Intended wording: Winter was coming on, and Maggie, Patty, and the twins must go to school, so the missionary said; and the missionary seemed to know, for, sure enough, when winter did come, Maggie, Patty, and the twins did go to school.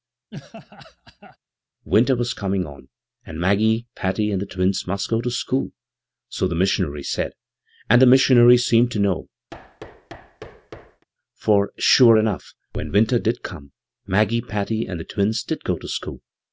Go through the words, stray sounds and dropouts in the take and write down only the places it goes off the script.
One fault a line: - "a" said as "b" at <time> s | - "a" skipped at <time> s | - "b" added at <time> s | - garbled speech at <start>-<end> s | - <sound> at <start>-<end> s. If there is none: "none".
- laugh at 0.3-1.4 s
- thud at 9.5-11.1 s